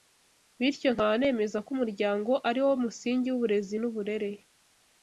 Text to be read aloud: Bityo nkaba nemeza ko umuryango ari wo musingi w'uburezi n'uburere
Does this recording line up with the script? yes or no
yes